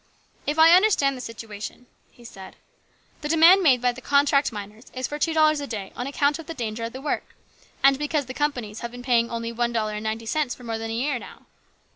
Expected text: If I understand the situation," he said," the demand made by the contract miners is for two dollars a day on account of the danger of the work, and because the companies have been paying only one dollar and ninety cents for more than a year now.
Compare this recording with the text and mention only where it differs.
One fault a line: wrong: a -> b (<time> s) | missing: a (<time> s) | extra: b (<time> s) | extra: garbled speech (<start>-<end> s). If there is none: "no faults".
no faults